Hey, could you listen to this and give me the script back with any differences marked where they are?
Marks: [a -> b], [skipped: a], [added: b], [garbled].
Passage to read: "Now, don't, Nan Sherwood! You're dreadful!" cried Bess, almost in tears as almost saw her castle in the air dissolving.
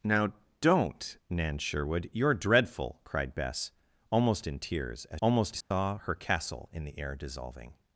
"Now, don't, Nan Sherwood! You're dreadful!" cried Bess, almost in tears as almost saw her castle in the air dissolving.